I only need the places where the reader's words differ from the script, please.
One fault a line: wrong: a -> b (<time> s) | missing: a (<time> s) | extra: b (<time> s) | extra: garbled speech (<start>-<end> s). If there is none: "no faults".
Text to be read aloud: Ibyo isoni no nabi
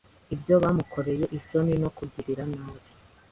extra: bamukoreye (0.6 s)
extra: kugirira (2.0 s)